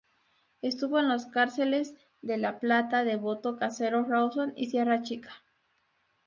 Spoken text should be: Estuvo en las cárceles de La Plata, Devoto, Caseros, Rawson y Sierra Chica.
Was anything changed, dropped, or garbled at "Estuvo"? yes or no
no